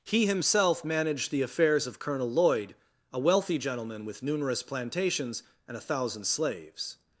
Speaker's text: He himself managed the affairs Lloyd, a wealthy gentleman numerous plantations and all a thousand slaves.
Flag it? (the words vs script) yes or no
yes